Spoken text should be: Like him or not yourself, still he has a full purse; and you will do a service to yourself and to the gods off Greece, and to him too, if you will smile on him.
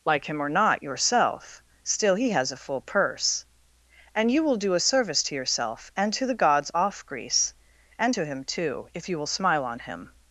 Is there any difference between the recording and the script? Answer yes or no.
no